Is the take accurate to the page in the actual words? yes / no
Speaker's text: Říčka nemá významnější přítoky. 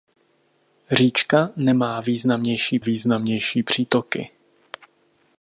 no